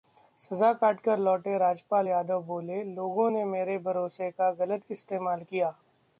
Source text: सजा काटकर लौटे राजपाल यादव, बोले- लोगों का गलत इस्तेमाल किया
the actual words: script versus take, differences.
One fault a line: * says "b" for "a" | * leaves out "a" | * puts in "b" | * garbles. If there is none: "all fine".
* puts in "ने मेरे भरोसे"